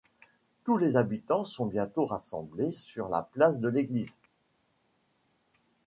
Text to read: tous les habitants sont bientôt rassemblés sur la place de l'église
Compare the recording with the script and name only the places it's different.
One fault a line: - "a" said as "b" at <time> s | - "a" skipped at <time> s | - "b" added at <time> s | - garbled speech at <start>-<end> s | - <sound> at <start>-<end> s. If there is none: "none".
none